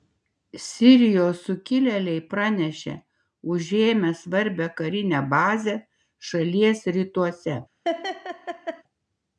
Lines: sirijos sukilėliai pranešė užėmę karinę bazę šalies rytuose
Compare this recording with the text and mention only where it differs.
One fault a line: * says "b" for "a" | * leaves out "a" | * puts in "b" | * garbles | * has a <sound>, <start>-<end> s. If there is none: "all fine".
* puts in "svarbią"
* has a laugh, 7.8-8.8 s